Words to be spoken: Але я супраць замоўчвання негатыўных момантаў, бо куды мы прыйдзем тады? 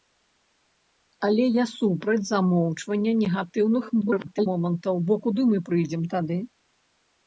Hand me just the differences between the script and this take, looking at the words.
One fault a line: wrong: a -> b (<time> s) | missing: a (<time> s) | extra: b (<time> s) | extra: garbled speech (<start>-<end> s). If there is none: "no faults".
extra: garbled speech (4.0-4.5 s)